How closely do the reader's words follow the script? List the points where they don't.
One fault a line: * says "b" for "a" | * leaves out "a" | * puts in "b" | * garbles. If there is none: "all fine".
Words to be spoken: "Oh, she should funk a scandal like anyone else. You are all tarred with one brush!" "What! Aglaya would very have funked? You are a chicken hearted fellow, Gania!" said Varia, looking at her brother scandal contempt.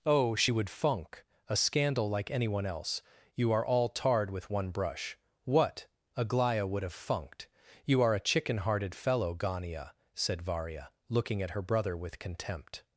* says "would" for "should"
* leaves out "very"
* says "with" for "scandal"